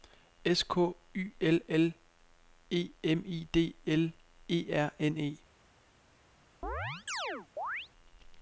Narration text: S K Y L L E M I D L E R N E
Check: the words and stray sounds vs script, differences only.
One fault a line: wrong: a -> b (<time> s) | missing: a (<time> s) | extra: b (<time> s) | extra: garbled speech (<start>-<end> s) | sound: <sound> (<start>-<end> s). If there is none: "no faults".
sound: chirp (6.6-7.9 s)